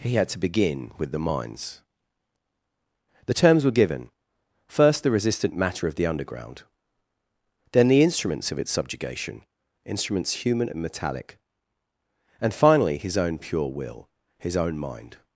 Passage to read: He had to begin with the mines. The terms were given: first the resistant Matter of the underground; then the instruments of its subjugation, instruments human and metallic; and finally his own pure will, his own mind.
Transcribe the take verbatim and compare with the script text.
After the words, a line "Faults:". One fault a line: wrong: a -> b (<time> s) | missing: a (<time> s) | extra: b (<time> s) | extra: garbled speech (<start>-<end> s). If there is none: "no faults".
He had to begin with the mines. The terms were given: first the resistant Matter of the underground; then the instruments of its subjugation, instruments human and metallic; and finally his own pure will, his own mind.
Faults:
no faults